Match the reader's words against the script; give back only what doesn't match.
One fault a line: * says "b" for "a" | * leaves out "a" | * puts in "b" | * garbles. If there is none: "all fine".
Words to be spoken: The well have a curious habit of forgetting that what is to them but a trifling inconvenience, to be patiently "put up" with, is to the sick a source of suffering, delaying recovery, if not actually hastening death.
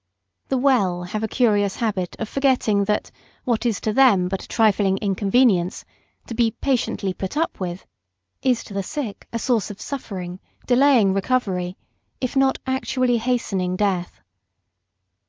all fine